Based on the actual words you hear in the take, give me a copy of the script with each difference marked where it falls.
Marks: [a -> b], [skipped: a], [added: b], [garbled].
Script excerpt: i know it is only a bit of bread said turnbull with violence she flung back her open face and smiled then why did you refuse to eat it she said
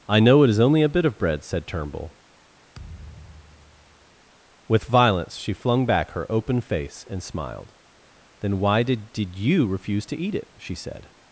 i know it is only a bit of bread said turnbull with violence she flung back her open face and smiled then why did [added: did] you refuse to eat it she said